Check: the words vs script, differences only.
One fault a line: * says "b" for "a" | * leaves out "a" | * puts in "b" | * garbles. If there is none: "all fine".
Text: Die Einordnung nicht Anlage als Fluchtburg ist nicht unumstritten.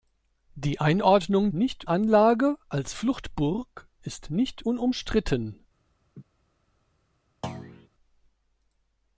all fine